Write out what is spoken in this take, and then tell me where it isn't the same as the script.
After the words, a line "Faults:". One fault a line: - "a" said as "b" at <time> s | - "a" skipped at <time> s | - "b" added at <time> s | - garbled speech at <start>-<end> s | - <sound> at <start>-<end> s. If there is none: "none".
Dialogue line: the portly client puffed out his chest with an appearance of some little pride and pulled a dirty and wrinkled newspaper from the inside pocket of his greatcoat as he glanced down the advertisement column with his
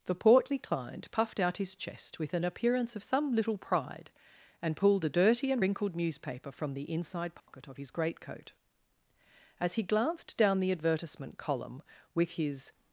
the portly client puffed out his chest with an appearance of some little pride and pulled a dirty and wrinkled newspaper from the inside pocket of his greatcoat as he glanced down the advertisement column with his
Faults:
- dropout at 7.4-7.5 s